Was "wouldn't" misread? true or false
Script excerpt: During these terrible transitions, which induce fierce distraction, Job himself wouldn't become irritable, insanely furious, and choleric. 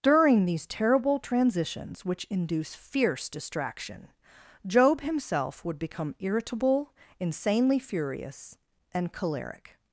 true